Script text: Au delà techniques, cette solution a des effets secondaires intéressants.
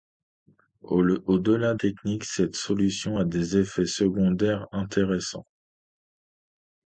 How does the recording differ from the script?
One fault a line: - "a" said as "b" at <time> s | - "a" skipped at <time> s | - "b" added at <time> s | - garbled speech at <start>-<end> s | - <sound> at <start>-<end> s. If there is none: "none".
none